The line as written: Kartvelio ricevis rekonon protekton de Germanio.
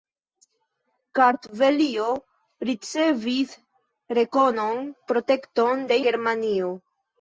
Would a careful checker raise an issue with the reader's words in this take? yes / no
no